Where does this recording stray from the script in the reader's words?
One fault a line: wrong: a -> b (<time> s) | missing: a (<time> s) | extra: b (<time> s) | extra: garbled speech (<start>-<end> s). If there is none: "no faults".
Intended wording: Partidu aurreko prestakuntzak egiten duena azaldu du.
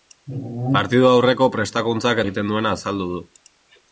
no faults